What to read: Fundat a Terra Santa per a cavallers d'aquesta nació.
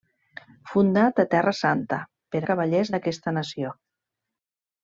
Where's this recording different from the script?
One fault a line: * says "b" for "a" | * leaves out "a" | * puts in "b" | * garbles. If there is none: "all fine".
all fine